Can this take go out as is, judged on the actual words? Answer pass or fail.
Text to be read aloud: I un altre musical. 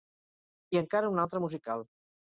fail